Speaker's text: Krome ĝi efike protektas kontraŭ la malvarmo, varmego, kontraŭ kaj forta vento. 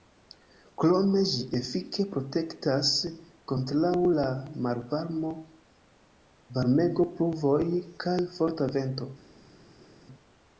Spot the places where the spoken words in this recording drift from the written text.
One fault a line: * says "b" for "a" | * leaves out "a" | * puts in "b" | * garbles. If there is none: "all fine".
* says "pluvoj" for "kontraŭ"